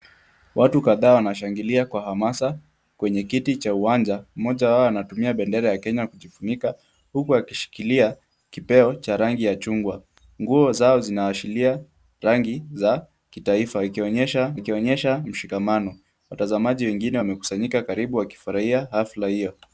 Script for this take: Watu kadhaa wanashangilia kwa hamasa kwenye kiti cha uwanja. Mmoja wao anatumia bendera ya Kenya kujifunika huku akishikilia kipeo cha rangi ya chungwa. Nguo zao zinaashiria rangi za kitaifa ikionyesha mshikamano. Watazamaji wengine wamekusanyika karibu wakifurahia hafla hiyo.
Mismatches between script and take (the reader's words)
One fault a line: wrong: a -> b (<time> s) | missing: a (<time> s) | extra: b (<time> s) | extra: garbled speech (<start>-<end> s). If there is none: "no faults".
extra: ikionyesha (14.5 s)